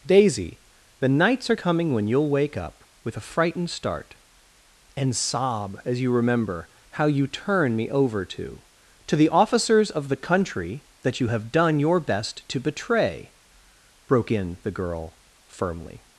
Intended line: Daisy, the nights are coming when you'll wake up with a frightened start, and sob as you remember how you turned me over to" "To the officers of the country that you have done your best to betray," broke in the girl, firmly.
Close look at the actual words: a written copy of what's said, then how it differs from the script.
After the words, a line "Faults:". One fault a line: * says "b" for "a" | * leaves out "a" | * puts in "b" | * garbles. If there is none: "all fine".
Daisy, the nights are coming when you'll wake up with a frightened start, and sob as you remember how you turn me over to" "To the officers of the country that you have done your best to betray," broke in the girl, firmly.
Faults:
* says "turn" for "turned"